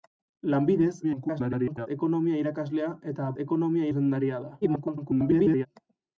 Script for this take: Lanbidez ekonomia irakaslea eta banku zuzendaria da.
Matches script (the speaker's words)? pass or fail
fail